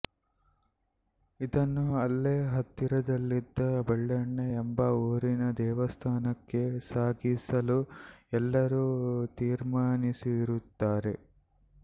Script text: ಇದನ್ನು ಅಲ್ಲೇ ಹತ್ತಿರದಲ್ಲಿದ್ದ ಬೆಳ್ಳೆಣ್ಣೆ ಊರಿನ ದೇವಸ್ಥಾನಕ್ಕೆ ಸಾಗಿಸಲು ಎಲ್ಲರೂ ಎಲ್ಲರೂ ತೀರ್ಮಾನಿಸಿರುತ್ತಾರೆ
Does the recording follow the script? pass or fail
fail